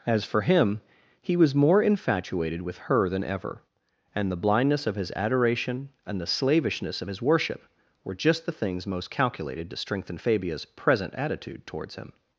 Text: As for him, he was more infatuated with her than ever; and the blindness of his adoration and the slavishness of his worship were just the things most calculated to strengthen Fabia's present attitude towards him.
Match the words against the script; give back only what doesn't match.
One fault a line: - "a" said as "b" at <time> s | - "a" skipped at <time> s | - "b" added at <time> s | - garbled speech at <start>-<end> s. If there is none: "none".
none